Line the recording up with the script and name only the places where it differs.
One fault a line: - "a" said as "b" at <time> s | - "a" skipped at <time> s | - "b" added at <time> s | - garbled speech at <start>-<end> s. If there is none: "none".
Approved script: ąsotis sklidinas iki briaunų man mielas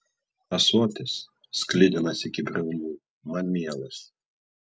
none